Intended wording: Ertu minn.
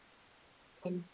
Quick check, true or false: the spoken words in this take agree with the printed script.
true